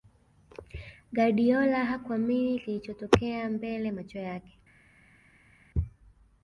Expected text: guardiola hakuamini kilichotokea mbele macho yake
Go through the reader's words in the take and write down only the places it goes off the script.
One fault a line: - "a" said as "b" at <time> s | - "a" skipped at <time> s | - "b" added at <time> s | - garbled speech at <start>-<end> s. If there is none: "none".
none